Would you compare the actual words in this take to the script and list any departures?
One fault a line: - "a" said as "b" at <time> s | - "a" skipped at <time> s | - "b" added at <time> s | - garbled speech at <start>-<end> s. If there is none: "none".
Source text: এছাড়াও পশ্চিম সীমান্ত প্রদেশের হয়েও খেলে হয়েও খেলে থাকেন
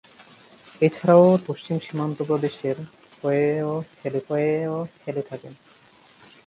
none